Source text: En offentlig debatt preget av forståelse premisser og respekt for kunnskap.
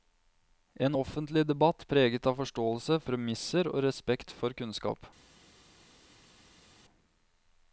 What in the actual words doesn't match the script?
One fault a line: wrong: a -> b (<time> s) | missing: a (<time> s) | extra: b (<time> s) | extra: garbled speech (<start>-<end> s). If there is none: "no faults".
no faults